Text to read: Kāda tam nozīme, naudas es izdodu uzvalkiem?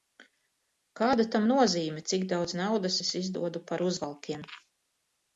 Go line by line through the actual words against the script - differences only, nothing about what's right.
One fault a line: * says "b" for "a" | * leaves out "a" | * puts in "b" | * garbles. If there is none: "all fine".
* puts in "cik daudz"
* puts in "par"